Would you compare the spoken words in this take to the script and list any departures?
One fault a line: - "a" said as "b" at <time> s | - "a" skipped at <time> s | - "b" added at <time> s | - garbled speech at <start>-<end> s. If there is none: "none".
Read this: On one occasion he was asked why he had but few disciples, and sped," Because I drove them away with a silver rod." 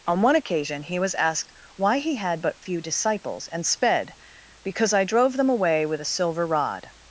none